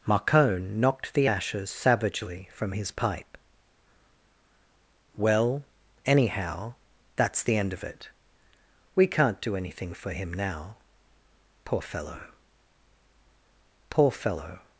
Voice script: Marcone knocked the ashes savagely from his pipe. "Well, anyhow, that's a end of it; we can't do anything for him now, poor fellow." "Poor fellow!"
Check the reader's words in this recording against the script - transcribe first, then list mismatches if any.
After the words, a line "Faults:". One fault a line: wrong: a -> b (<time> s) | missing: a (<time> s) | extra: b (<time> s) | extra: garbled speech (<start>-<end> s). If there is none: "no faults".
Marcone knocked the ashes savagely from his pipe. "Well, anyhow, that's the end of it; we can't do anything for him now, poor fellow." "Poor fellow!"
Faults:
wrong: a -> the (7.4 s)